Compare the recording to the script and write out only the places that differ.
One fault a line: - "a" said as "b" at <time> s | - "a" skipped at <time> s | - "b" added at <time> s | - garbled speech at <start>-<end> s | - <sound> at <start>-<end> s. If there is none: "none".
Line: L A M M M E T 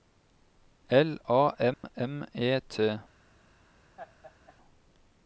- dropout at 1.7-1.8 s
- "M" skipped at 2.2 s
- laugh at 4.0-4.6 s